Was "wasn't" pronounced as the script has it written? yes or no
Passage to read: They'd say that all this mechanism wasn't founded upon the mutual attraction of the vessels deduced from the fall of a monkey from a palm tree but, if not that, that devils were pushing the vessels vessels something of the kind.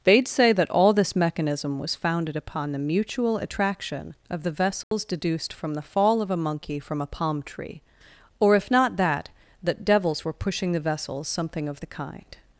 no